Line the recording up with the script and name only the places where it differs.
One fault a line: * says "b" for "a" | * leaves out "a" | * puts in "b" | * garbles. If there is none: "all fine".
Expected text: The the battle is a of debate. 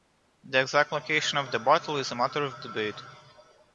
* puts in "exact location of"
* puts in "matter"